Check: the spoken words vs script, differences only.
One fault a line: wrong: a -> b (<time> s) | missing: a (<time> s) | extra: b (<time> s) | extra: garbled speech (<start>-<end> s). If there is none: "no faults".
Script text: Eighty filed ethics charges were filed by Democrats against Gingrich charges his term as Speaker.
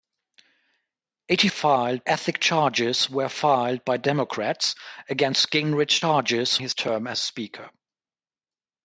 no faults